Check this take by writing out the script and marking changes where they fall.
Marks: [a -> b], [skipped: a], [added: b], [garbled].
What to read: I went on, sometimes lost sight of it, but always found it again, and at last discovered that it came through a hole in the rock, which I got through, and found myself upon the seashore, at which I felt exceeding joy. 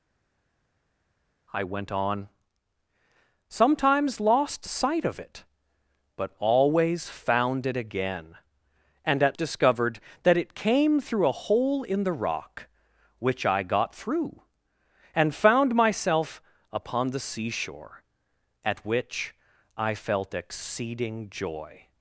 I went on, sometimes lost sight of it, but always found it again, and at [skipped: last] discovered that it came through a hole in the rock, which I got through, and found myself upon the seashore, at which I felt exceeding joy.